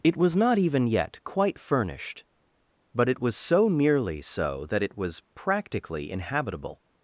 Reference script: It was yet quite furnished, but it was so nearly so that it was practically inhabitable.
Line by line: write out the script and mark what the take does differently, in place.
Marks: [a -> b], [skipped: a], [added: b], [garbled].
It was [added: not even] yet quite furnished, but it was so nearly so that it was practically inhabitable.